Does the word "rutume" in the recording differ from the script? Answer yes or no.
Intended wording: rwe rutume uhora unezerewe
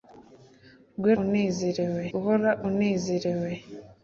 yes